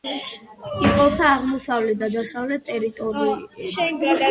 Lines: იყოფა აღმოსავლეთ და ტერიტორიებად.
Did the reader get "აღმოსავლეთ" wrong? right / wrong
right